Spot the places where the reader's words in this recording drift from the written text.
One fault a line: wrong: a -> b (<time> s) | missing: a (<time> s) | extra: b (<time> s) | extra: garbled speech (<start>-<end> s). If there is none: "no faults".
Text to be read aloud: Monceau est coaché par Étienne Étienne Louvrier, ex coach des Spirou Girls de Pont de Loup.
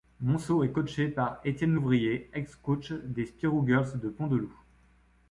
missing: Étienne (1.8 s)